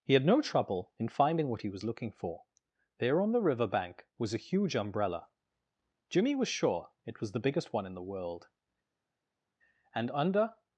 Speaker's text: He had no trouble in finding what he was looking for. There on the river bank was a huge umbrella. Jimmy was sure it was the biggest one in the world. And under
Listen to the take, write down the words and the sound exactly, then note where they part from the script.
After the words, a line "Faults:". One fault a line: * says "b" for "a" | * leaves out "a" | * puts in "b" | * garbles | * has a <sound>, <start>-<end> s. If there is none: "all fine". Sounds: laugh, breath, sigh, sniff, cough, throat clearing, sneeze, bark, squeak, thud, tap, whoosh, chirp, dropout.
He had no trouble in finding what he was looking for. There on the river bank was a huge umbrella. Jimmy was sure it was the biggest one in the world. And under
Faults:
all fine